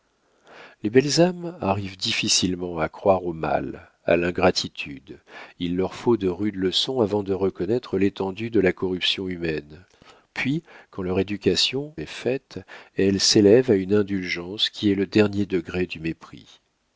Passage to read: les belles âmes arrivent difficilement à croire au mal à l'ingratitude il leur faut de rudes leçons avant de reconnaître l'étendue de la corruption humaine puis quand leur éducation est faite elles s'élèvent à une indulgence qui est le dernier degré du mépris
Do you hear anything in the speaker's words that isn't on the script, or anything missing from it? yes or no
no